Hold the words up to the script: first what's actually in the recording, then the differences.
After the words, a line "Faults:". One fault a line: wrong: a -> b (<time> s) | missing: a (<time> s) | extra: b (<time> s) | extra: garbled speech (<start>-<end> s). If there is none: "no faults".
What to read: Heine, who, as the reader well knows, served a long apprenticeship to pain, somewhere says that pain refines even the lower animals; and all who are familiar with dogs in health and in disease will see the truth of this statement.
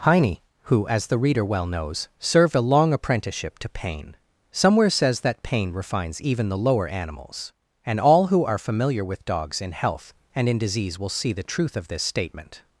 Heine, who, as the reader well knows, served a long apprenticeship to pain, somewhere says that pain refines even the lower animals; and all who are familiar with dogs in health and in disease will see the truth of this statement.
Faults:
no faults